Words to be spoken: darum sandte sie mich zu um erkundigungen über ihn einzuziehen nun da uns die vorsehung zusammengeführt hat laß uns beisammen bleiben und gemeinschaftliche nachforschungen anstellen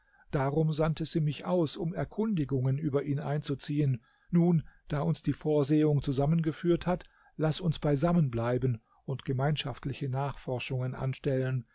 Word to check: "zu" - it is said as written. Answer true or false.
false